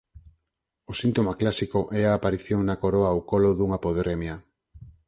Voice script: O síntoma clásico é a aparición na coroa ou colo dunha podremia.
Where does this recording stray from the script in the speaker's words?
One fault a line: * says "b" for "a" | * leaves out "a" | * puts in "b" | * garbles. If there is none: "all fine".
all fine